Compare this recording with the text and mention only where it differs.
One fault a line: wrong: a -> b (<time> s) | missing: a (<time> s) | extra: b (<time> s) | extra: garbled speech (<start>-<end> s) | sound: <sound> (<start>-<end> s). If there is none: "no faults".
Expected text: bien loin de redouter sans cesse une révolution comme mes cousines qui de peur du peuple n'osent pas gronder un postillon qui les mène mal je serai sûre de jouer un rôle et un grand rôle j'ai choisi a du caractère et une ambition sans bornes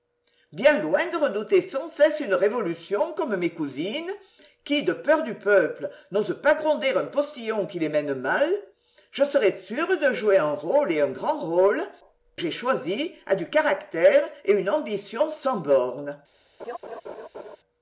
sound: laugh (16.6-17.6 s)